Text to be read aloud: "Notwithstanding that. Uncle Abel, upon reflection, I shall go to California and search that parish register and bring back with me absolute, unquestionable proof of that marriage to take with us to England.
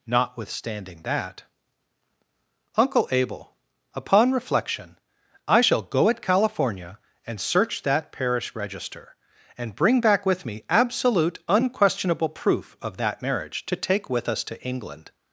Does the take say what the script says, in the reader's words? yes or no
no